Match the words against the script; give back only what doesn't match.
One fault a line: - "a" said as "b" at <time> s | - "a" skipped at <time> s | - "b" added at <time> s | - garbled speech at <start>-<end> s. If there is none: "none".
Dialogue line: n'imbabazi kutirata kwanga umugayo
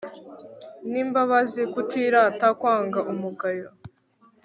none